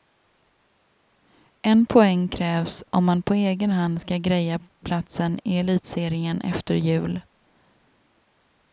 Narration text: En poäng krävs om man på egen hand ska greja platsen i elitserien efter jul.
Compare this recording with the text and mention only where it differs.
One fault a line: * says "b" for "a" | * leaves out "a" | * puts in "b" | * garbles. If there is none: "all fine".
all fine